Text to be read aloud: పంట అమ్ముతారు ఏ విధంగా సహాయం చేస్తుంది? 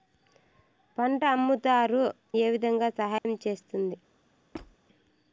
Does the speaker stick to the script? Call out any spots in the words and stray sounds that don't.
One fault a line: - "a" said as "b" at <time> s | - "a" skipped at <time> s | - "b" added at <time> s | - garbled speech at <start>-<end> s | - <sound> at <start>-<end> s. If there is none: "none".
- dropout at 3.2-3.2 s
- squeak at 4.5-4.8 s